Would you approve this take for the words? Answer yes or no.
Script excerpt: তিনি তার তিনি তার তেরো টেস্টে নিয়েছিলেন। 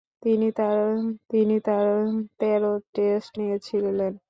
yes